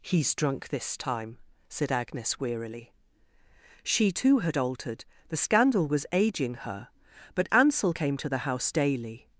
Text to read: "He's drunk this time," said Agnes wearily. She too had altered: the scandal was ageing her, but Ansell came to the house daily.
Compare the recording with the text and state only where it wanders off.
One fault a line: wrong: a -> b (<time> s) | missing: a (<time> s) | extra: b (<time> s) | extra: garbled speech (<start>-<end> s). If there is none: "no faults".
no faults